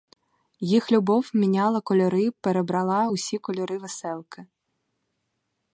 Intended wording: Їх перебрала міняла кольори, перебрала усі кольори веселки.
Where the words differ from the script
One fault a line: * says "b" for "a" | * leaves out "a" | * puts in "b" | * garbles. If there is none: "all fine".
* says "любов" for "перебрала"